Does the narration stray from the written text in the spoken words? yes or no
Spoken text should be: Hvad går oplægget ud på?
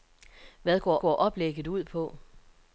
yes